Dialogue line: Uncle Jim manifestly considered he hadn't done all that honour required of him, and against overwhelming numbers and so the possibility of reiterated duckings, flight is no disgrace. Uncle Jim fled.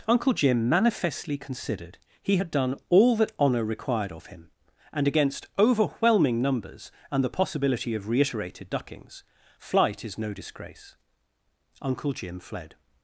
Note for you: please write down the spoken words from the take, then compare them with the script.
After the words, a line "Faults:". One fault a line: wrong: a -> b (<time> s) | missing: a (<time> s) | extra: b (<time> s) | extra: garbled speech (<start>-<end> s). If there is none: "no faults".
Uncle Jim manifestly considered he had done all that honour required of him, and against overwhelming numbers and the possibility of reiterated duckings, flight is no disgrace. Uncle Jim fled.
Faults:
wrong: hadn't -> had (2.3 s)
missing: so (7.2 s)